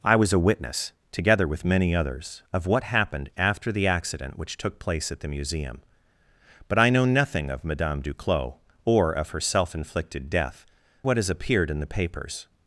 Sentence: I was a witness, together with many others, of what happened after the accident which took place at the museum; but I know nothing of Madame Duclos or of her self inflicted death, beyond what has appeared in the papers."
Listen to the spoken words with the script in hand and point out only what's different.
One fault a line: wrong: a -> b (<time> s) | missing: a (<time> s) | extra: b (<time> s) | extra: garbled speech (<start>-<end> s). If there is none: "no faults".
missing: beyond (10.7 s)